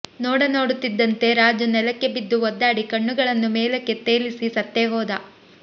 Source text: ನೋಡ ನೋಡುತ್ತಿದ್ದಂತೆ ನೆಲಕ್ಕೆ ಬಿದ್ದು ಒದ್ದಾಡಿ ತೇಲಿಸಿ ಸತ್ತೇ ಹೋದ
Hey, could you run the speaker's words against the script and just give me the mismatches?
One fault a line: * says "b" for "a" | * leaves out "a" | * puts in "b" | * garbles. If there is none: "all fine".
* puts in "ರಾಜು"
* puts in "ಕಣ್ಣುಗಳನ್ನು ಮೇಲಕ್ಕೆ"